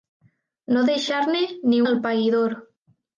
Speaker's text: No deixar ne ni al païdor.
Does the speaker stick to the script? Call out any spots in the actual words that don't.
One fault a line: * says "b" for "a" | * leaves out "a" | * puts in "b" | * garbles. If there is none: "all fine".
all fine